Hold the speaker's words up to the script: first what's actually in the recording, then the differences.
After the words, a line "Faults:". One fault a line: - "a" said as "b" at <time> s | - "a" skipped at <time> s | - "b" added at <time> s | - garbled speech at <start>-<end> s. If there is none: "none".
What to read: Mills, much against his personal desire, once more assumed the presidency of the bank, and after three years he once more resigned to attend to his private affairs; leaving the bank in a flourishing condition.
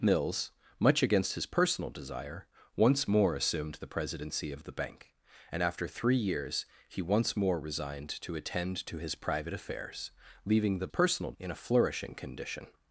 Mills, much against his personal desire, once more assumed the presidency of the bank, and after three years he once more resigned to attend to his private affairs; leaving the personal in a flourishing condition.
Faults:
- "bank" said as "personal" at 10.9 s